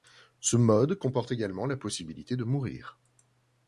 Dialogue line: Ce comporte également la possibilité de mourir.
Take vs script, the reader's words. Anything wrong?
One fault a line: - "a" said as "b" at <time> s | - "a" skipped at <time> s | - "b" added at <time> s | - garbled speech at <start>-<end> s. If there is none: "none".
- "mode" added at 0.6 s